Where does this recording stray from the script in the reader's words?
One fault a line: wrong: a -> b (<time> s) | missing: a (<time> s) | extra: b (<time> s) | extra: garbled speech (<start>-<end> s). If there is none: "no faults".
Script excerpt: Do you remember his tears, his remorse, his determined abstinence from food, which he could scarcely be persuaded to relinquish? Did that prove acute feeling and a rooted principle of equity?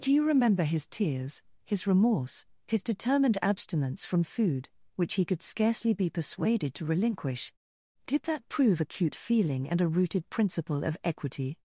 no faults